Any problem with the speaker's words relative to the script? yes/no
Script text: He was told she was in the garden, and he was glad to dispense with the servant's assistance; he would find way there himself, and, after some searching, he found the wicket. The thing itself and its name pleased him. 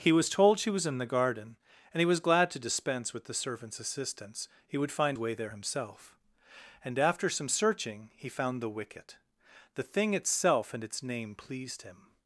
no